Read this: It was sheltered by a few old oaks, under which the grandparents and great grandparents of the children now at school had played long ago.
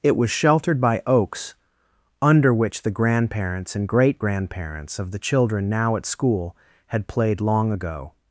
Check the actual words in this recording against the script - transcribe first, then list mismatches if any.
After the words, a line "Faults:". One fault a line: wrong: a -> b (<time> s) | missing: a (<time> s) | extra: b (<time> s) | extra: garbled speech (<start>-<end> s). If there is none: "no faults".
It was sheltered by oaks, under which the grandparents and great grandparents of the children now at school had played long ago.
Faults:
missing: a few old (1.0 s)